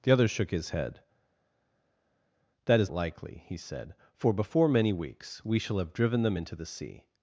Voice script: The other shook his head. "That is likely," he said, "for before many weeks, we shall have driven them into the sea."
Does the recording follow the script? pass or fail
pass